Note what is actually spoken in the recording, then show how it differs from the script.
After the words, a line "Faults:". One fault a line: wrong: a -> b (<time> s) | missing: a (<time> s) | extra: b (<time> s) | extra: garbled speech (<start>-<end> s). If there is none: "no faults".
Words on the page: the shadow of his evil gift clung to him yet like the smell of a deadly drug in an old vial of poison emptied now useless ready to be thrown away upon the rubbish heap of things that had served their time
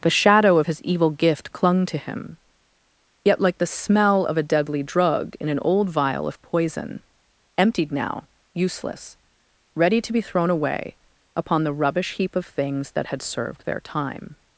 the shadow of his evil gift clung to him yet like the smell of a deadly drug in an old vial of poison emptied now useless ready to be thrown away upon the rubbish heap of things that had served their time
Faults:
no faults